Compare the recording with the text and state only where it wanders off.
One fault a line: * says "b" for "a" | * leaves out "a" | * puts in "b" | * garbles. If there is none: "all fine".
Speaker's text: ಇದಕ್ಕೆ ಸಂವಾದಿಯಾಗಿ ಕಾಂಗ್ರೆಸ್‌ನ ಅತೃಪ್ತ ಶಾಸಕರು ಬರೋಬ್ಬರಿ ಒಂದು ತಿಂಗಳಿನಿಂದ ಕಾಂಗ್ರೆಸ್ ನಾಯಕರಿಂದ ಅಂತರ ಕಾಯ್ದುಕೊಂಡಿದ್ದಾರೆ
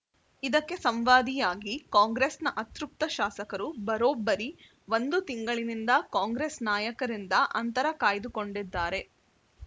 all fine